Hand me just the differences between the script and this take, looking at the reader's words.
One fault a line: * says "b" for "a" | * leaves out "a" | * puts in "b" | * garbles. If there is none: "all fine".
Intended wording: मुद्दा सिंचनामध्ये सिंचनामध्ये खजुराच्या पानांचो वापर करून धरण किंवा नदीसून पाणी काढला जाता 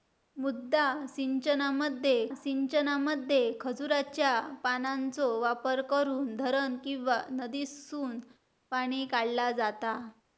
all fine